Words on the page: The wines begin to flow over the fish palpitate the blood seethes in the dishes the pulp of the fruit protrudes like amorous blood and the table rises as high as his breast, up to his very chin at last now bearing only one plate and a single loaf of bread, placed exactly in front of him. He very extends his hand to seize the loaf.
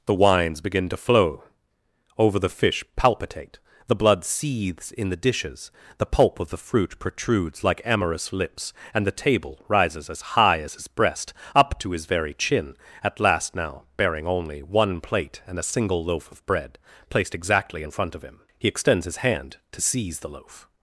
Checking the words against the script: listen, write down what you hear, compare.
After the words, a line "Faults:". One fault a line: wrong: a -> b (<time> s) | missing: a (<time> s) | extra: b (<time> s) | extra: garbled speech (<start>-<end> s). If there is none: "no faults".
The wines begin to flow over the fish palpitate the blood seethes in the dishes the pulp of the fruit protrudes like amorous lips and the table rises as high as his breast, up to his very chin at last now bearing only one plate and a single loaf of bread, placed exactly in front of him. He extends his hand to seize the loaf.
Faults:
wrong: blood -> lips (8.3 s)
missing: very (18.7 s)